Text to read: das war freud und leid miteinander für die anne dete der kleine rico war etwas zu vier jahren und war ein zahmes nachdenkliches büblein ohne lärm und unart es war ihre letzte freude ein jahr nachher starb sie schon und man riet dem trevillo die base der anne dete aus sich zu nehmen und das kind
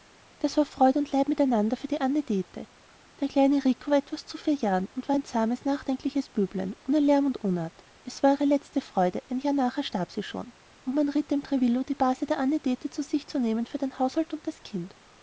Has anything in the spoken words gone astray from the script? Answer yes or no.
yes